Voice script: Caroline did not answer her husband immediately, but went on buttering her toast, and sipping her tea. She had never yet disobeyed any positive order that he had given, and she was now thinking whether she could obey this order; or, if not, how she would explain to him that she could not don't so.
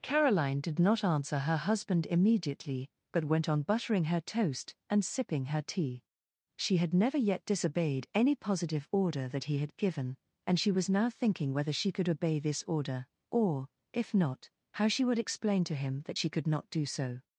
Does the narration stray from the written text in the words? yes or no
yes